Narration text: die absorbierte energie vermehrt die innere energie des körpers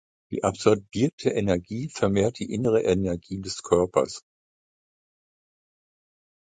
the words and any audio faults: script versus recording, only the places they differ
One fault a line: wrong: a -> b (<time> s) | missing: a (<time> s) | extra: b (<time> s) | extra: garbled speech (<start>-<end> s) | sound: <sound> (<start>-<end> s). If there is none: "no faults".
no faults